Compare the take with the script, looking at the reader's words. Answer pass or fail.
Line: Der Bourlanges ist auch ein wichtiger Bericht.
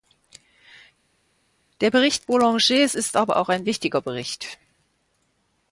fail